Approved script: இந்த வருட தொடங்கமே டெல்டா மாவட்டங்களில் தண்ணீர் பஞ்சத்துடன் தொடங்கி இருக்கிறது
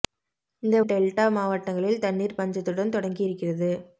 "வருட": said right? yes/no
no